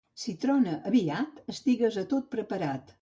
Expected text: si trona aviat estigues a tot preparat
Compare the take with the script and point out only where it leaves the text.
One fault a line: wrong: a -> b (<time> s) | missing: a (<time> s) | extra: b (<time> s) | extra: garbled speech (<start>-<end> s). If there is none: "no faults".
no faults